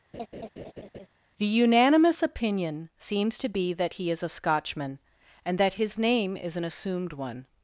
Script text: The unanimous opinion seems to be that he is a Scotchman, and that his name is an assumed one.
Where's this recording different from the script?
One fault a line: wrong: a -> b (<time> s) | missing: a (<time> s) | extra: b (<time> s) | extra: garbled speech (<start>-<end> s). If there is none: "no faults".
no faults